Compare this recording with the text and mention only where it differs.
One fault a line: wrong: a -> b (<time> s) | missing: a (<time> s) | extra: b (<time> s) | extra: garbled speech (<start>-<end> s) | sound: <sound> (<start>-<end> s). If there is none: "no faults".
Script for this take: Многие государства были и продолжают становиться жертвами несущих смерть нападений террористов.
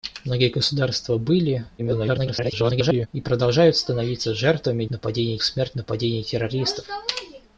extra: garbled speech (1.8-3.1 s)
wrong: несущих -> нападений (4.9 s)